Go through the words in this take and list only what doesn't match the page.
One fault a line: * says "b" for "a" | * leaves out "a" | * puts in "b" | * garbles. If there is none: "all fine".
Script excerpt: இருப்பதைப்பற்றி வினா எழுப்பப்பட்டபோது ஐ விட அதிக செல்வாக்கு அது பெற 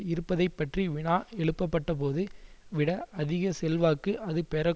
* leaves out "ஐ"